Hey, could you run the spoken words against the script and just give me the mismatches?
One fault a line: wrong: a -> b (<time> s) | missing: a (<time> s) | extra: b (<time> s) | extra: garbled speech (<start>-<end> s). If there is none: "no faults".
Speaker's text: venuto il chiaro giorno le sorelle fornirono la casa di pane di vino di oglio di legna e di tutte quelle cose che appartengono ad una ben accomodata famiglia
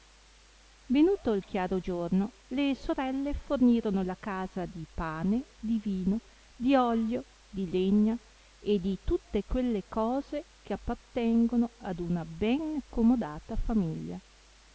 no faults